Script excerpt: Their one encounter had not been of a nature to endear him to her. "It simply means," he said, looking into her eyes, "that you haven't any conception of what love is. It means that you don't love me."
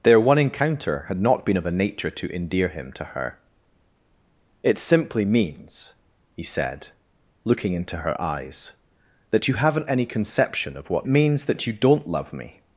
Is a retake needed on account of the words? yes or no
yes